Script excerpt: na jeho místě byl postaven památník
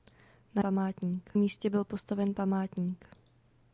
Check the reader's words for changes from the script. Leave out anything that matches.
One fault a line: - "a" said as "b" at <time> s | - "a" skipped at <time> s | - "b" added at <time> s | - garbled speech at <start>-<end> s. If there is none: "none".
- "jeho" said as "památník" at 0.6 s